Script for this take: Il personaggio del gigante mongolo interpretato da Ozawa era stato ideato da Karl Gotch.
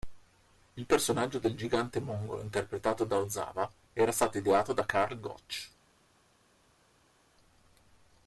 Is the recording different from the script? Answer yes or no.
no